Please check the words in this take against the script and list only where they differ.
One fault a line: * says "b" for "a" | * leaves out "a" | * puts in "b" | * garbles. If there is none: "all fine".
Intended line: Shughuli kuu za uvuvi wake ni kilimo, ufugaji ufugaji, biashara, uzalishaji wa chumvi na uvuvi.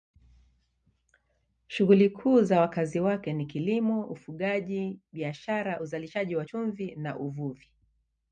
* says "wakazi" for "uvuvi"
* leaves out "ufugaji"